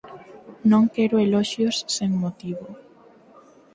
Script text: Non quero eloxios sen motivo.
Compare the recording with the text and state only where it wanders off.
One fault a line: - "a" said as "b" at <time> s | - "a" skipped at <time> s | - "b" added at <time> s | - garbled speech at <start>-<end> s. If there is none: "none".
none